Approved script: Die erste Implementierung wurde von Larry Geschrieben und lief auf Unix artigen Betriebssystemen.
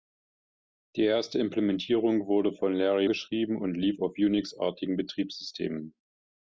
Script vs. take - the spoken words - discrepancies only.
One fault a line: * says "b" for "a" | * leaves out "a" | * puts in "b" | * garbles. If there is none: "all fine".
all fine